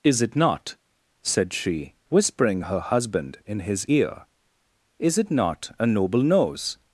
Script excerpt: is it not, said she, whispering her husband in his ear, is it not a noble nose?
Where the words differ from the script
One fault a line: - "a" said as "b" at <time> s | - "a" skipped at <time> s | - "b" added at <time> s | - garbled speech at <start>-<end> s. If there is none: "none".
none